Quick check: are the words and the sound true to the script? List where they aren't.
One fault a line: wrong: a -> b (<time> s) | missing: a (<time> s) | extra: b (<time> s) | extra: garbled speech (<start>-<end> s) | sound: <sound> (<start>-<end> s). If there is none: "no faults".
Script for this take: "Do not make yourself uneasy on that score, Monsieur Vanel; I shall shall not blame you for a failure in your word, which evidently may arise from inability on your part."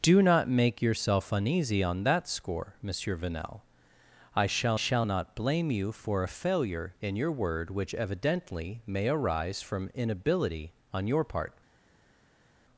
no faults